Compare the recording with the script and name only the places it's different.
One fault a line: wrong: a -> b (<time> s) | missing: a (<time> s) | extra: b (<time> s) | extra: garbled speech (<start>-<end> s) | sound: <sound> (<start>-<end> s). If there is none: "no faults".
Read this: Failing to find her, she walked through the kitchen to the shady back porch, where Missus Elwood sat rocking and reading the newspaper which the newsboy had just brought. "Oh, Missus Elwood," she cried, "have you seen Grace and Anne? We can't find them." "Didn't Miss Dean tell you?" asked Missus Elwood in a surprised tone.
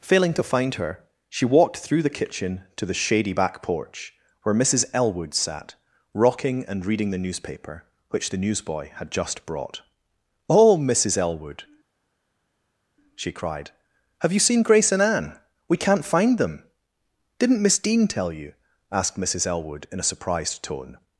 no faults